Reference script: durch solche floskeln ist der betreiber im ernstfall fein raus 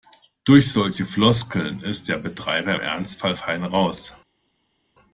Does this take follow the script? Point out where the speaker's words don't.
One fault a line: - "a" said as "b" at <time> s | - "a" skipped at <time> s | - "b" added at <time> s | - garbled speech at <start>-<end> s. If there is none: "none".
none